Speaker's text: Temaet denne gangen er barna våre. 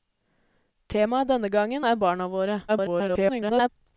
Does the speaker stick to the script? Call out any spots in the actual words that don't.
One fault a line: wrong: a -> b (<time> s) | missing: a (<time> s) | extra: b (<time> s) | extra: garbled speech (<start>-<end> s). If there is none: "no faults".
extra: garbled speech (2.7-3.7 s)